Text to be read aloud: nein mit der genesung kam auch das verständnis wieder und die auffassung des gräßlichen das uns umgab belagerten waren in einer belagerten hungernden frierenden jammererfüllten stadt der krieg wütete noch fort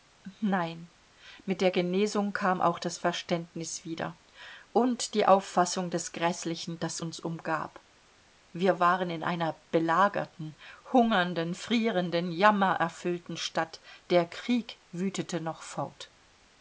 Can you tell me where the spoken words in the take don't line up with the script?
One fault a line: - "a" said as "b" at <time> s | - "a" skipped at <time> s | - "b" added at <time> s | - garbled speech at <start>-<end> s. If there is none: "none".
- "belagerten" said as "wir" at 8.5 s